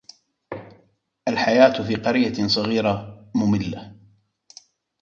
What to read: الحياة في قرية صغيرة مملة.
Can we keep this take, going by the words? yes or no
yes